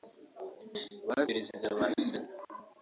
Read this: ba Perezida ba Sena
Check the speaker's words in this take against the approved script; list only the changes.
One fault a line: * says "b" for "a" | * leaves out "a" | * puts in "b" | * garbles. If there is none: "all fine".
all fine